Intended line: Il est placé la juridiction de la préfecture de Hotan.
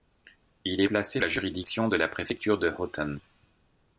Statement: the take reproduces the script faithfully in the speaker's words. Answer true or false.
true